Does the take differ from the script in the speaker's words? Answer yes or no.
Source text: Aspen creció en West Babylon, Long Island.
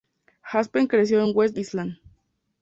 yes